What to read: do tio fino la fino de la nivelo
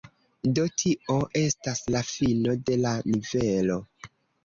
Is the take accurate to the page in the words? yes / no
no